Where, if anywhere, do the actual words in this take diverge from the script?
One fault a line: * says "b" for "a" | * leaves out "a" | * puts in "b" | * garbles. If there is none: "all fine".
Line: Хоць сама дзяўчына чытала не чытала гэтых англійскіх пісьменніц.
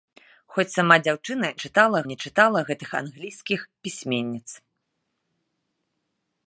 all fine